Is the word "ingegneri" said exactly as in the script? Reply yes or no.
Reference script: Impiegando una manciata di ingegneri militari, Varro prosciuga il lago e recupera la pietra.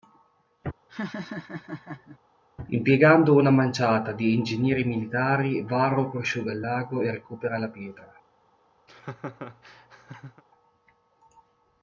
yes